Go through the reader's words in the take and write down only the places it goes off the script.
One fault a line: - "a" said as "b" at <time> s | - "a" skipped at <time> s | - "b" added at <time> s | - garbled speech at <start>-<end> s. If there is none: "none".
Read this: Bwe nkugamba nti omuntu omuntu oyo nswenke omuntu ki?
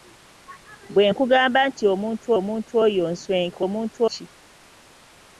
none